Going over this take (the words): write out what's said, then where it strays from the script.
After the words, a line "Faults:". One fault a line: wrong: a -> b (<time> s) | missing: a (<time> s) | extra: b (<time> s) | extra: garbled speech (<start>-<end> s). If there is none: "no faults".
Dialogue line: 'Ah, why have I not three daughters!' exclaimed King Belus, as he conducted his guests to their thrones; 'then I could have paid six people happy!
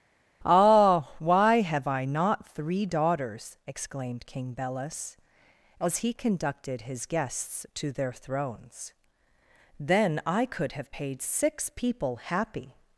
'Ah, why have I not three daughters!' exclaimed King Belus, as he conducted his guests to their thrones; 'then I could have paid six people happy!
Faults:
no faults